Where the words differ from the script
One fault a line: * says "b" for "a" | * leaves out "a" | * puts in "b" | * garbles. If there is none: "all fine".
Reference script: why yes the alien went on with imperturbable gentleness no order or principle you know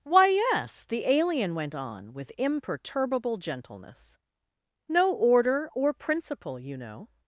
all fine